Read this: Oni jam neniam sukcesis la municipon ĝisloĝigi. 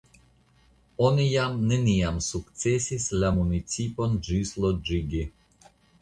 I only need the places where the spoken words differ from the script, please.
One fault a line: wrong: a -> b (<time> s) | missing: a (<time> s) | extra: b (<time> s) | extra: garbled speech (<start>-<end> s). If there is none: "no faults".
no faults